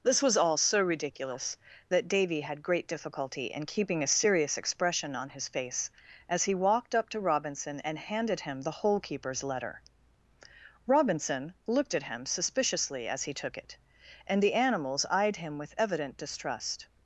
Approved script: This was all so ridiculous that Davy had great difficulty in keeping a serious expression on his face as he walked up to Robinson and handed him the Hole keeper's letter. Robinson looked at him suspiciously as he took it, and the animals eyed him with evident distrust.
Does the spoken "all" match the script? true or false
true